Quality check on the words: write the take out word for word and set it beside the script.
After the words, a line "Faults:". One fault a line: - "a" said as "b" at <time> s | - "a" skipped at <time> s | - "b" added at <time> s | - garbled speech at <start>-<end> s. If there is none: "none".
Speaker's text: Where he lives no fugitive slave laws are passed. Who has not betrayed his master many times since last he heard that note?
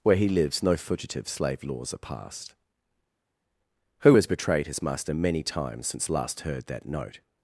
Where he lives no fugitive slave laws are passed. Who has betrayed his master many times since last heard that note?
Faults:
- "not" skipped at 4.3 s
- "he" skipped at 6.4 s